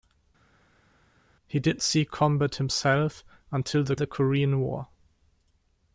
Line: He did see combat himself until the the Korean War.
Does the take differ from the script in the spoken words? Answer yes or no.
no